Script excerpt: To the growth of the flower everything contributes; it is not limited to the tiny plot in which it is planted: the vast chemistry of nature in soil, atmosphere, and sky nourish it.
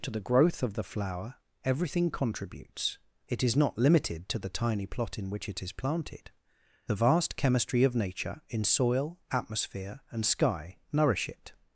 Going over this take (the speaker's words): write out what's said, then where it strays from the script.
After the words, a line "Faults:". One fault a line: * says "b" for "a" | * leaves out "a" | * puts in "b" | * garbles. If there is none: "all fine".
To the growth of the flower everything contributes; it is not limited to the tiny plot in which it is planted: the vast chemistry of nature in soil, atmosphere, and sky nourish it.
Faults:
all fine